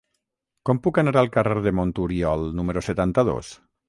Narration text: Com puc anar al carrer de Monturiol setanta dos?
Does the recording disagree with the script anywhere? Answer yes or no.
yes